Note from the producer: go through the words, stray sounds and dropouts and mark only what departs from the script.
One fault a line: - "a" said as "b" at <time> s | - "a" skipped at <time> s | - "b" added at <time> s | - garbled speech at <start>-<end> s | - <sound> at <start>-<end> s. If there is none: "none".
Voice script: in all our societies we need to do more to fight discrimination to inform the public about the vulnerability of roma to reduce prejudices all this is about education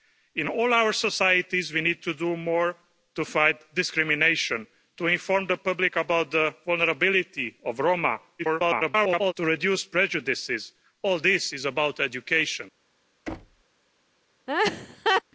- garbled speech at 8.4-9.3 s
- thud at 13.3-13.6 s
- laugh at 14.5-15.2 s